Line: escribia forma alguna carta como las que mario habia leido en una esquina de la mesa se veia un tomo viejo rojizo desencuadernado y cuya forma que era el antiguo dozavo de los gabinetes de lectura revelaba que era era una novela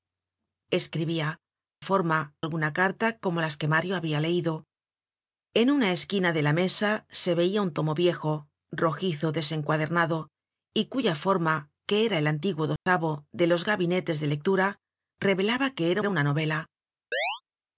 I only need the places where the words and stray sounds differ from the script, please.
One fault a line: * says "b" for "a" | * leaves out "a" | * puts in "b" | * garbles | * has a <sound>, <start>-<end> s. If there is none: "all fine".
* has a dropout, 12.8-12.9 s
* has a chirp, 17.1-17.4 s